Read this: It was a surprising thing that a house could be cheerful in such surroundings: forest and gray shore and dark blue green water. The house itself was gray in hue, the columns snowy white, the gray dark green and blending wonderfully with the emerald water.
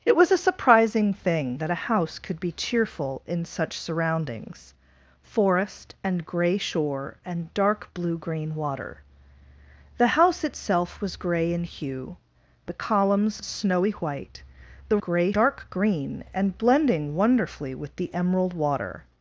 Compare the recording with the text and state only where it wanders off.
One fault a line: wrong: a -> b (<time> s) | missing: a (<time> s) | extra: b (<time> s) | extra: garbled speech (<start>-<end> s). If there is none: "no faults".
no faults